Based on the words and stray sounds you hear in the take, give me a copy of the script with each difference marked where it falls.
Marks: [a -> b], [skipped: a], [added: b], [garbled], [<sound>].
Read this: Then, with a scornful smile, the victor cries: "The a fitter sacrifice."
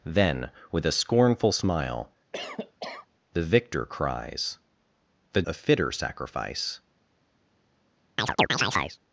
Then, with a scornful smile, [cough] the victor cries: "The a fitter sacrifice." [chirp]